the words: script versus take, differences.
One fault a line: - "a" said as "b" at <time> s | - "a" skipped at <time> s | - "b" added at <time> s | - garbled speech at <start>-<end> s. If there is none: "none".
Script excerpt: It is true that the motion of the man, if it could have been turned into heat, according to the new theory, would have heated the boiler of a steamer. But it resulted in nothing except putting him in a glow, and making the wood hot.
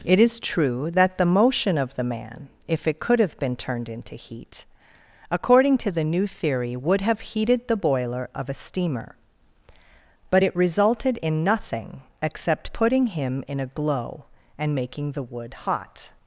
none